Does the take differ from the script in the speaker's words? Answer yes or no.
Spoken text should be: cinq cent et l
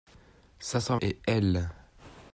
no